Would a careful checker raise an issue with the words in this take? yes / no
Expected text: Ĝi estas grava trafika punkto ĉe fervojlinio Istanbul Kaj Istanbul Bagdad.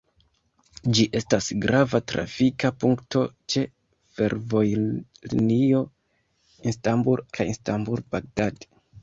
no